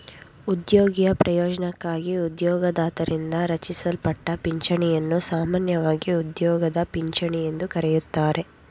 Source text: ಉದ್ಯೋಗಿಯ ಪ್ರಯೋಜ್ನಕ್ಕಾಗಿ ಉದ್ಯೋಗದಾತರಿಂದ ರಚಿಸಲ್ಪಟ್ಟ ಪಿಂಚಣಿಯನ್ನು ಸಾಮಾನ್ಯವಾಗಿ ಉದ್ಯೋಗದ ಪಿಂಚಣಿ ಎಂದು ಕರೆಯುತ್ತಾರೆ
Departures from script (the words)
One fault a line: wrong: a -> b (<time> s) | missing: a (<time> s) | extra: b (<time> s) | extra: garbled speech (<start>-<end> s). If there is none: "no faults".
no faults